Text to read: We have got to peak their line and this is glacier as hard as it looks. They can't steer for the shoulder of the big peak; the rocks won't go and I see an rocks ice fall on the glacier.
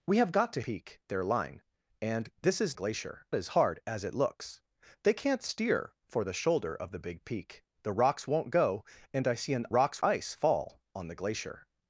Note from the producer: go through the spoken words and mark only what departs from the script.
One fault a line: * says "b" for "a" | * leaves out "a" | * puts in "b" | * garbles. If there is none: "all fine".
all fine